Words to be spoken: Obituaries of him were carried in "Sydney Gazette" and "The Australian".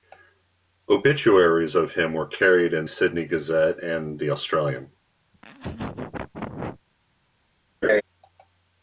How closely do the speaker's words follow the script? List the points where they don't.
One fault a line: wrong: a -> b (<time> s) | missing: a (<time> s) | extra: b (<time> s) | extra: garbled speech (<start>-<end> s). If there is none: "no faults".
no faults